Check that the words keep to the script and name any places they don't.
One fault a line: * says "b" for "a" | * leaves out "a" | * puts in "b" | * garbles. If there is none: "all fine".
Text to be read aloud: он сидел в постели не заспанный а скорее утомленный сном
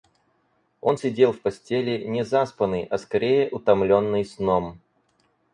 all fine